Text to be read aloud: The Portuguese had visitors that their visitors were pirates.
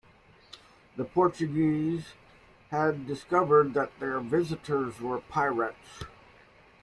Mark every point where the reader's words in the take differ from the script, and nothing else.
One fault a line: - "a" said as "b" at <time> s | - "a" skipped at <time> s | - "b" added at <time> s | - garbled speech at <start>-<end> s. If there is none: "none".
- "visitors" said as "discovered" at 3.0 s